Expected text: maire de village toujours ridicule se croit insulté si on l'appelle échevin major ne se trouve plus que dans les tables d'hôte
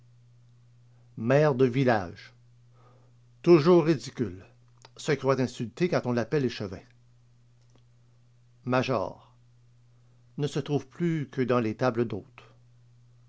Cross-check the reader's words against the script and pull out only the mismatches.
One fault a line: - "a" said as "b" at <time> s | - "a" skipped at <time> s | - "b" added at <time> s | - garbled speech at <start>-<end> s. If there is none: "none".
- "si" said as "quand" at 5.9 s